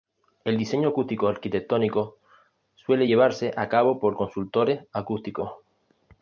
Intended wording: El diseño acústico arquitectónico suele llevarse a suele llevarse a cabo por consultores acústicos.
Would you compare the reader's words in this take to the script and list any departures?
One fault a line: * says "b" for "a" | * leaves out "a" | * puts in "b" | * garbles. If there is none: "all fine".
* leaves out "suele llevarse a"